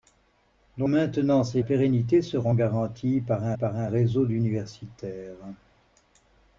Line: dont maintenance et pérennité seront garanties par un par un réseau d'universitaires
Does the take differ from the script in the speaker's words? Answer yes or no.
no